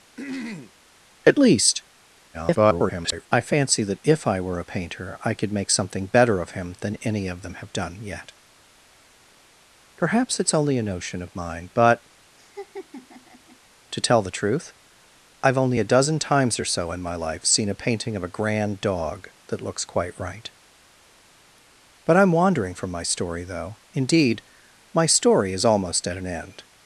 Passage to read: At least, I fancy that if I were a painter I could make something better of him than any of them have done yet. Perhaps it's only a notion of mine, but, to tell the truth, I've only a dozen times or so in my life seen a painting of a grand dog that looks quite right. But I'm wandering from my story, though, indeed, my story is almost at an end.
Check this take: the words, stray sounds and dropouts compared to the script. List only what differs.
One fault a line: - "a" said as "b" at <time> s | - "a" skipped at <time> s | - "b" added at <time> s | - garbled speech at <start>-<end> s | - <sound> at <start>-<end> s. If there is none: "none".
- throat clearing at 0.2-0.7 s
- garbled speech at 2.3-3.3 s
- laugh at 12.4-13.6 s